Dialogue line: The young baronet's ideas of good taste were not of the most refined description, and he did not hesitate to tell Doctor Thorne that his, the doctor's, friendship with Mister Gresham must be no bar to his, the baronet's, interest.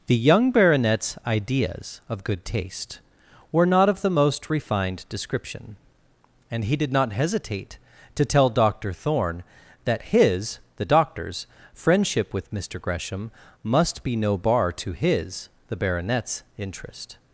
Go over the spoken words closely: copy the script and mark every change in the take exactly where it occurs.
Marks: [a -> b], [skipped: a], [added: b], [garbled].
The young baronet's ideas of good taste were not of the most refined description, and he did not hesitate to tell Doctor Thorne that his, the doctor's, friendship with Mister Gresham must be no bar to his, the baronet's, interest.